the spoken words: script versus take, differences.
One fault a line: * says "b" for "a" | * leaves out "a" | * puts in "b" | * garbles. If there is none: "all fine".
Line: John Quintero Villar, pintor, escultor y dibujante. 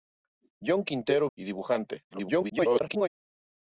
* leaves out "Villar pintor escultor"
* garbles